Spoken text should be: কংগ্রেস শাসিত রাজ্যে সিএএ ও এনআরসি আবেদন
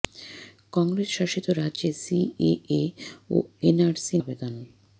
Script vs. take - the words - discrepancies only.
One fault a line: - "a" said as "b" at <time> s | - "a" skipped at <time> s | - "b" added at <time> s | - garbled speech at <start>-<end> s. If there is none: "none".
none